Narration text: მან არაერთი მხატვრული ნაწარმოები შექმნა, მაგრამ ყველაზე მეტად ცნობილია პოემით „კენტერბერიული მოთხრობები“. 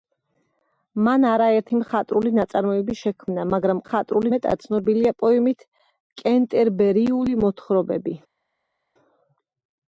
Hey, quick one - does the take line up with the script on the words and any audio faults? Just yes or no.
no